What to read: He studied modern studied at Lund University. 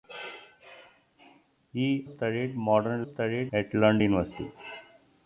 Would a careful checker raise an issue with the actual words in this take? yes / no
no